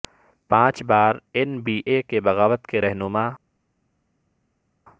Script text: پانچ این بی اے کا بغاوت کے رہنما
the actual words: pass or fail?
fail